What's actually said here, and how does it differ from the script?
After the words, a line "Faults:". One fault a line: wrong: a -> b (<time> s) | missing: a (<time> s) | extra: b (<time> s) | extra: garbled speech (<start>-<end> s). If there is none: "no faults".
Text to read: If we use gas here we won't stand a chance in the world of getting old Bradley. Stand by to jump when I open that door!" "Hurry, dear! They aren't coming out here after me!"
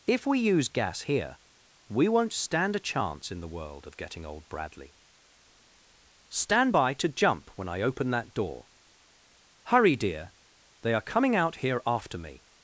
If we use gas here we won't stand a chance in the world of getting old Bradley. Stand by to jump when I open that door!" "Hurry, dear! They are coming out here after me!"
Faults:
wrong: aren't -> are (10.9 s)